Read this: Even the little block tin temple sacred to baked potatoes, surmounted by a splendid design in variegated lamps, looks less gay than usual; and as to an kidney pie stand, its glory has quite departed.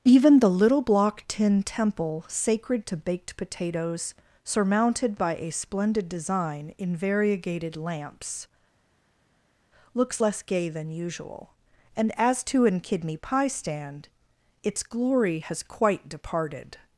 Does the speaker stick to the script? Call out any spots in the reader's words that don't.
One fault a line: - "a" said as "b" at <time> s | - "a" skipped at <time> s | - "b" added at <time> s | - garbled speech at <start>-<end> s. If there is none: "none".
none